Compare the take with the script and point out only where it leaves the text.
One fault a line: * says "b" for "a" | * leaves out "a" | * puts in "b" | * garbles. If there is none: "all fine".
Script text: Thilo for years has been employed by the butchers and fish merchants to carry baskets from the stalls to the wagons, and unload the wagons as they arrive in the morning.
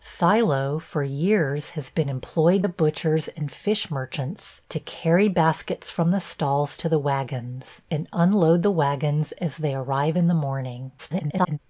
* leaves out "by"
* garbles